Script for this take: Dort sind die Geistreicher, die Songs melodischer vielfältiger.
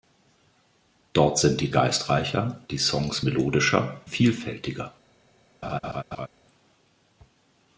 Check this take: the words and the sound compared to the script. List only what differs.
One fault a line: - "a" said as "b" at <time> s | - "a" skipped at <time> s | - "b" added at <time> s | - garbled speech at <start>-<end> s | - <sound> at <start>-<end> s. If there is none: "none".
- laugh at 5.6-6.3 s